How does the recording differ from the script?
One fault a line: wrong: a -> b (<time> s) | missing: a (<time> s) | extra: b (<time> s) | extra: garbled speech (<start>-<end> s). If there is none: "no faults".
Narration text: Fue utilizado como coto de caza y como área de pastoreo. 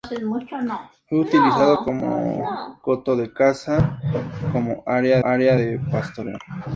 extra: área (5.2 s)